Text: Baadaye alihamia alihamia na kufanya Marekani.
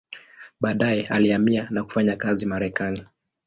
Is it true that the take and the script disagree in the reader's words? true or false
true